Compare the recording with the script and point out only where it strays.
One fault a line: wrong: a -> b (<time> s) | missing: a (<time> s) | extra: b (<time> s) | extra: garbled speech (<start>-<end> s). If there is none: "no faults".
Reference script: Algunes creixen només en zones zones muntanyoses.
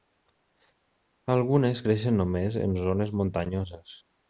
missing: zones (3.2 s)